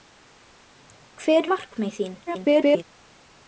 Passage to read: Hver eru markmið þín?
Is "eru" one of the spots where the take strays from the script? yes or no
yes